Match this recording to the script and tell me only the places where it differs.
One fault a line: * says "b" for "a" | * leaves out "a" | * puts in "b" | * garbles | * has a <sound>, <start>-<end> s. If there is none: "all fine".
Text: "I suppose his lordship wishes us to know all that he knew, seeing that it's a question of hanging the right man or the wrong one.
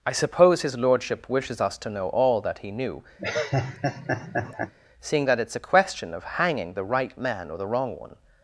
* has a laugh, 3.2-4.7 s